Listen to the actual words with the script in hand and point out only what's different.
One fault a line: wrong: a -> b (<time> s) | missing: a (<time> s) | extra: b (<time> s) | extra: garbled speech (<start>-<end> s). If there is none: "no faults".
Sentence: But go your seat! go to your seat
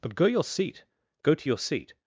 no faults